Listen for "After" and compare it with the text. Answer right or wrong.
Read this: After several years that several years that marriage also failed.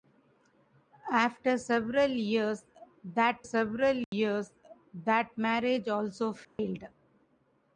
right